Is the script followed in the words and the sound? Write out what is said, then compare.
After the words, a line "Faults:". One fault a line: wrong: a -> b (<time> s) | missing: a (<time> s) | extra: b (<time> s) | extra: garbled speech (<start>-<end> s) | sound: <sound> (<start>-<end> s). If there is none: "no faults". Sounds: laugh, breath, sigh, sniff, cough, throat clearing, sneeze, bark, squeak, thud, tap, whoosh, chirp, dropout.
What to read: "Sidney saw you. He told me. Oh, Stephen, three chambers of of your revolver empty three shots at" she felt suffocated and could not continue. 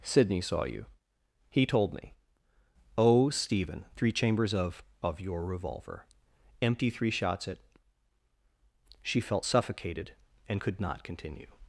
"Sidney saw you. He told me. Oh, Stephen, three chambers of of your revolver empty three shots at" she felt suffocated and could not continue.
Faults:
no faults